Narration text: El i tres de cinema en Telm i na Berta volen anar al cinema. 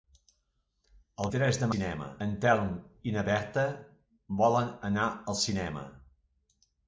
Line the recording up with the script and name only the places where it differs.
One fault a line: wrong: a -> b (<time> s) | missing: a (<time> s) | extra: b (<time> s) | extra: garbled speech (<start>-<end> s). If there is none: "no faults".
no faults